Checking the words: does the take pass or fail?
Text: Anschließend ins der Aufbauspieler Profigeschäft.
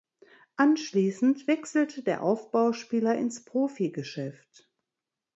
fail